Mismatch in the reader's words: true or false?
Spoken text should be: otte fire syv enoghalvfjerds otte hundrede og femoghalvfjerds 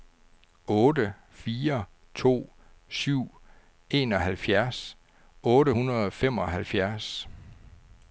true